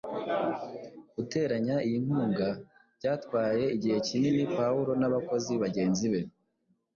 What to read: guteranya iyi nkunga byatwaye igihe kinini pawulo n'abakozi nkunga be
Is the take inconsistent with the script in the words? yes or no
yes